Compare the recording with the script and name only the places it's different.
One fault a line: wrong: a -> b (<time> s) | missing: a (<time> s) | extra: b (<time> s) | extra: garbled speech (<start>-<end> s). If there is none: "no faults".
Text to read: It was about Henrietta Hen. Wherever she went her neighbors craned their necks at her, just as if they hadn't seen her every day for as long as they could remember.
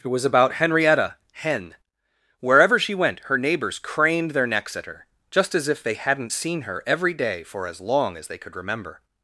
no faults